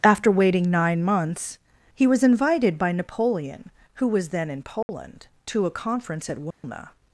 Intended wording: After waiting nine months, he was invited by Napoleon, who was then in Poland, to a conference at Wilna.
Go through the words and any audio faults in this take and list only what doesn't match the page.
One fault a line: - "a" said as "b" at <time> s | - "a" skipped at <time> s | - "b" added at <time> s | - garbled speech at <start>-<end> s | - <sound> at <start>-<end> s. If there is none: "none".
- dropout at 4.8-4.9 s
- dropout at 6.5-6.6 s